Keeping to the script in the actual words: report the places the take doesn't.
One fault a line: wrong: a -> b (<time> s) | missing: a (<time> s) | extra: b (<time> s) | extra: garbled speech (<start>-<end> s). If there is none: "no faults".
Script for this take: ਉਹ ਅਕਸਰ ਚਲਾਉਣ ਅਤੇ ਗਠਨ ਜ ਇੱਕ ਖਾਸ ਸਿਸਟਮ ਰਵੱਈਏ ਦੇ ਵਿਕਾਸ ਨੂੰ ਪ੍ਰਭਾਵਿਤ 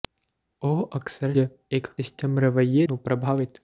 missing: ਚਲਾਉਣ ਅਤੇ ਗਠਨ (1.3 s)
missing: ਖਾਸ (1.9 s)
missing: ਦੇ ਵਿਕਾਸ (2.9 s)